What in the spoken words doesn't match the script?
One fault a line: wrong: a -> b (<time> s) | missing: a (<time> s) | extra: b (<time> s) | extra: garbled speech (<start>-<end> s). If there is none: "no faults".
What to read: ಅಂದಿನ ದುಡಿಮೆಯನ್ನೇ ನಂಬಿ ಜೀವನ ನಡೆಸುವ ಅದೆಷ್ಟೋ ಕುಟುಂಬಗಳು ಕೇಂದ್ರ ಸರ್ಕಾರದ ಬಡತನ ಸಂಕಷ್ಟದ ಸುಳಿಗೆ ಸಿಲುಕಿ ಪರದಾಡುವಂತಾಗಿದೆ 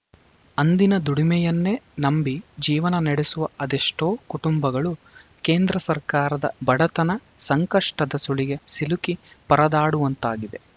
no faults